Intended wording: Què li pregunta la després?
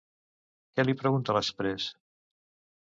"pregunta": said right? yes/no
yes